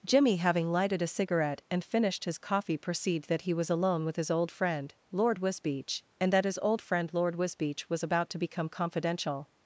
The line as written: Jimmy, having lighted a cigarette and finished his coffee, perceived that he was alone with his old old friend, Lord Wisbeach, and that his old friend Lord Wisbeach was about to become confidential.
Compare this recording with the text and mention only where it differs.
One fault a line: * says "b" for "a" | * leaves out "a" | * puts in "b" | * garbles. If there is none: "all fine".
* leaves out "old"